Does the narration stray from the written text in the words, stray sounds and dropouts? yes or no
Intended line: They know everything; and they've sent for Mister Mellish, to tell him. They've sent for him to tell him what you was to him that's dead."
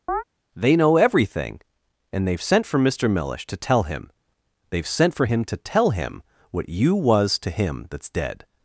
yes